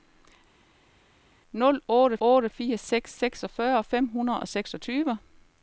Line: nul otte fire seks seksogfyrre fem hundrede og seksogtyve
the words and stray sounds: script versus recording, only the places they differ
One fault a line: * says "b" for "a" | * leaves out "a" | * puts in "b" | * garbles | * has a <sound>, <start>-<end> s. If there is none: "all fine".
* puts in "otte"